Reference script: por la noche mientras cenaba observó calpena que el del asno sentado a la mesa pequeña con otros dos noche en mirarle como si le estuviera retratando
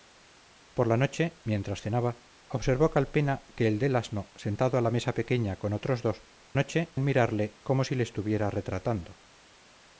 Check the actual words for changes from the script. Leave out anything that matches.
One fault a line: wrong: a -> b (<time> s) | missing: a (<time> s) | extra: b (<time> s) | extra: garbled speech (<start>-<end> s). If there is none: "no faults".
no faults